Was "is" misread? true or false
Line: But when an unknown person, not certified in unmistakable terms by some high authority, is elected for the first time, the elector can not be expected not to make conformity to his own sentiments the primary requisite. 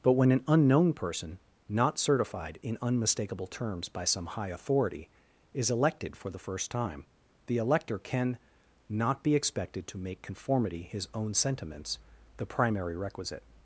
false